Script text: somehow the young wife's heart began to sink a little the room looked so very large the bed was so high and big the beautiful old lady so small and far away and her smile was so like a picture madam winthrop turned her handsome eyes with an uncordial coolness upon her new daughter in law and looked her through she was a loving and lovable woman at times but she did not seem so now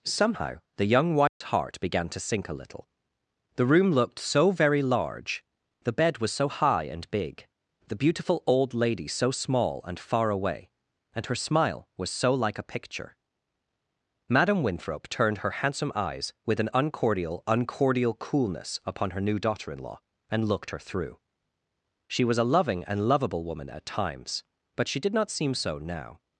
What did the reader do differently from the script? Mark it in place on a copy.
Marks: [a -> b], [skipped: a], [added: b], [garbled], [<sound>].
somehow the young wife's [dropout] heart began to sink a little the room looked so very large the bed was so high and big the beautiful old lady so small and far away and her smile was so like a picture madam winthrop turned her handsome eyes with an uncordial [added: uncordial] coolness upon her new daughter in law and looked her through she was a loving and lovable woman at times but she did not seem so now